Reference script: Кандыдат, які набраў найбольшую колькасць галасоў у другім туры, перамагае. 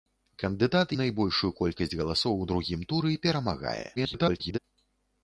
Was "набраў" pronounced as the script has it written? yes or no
no